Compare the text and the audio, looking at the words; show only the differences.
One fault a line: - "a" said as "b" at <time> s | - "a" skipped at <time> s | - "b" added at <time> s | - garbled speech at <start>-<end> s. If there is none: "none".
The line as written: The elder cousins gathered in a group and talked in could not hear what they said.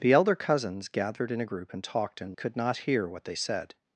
none